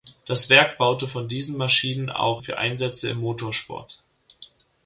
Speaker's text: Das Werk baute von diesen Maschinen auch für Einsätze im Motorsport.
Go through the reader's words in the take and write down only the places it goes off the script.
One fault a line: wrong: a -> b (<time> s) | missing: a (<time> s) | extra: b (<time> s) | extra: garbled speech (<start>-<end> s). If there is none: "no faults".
no faults